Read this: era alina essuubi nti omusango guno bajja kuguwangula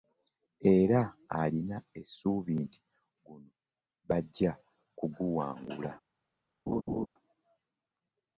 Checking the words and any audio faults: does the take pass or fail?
fail